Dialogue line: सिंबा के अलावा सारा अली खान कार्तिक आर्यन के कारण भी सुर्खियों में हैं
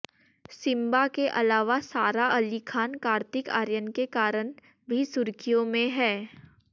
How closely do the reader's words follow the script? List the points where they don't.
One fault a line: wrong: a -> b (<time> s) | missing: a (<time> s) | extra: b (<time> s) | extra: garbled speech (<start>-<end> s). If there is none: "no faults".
no faults